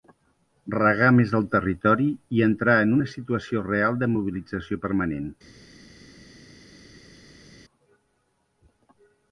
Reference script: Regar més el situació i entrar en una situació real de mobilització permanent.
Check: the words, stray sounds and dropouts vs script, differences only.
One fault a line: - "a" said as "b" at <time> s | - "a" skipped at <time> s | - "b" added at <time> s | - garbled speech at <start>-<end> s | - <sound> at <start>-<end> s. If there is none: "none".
- "situació" said as "territori" at 1.6 s